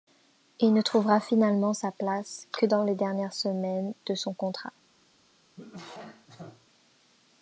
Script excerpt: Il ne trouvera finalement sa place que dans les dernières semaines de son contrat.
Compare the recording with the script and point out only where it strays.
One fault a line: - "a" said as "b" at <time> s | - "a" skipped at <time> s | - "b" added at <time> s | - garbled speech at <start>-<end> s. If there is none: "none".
none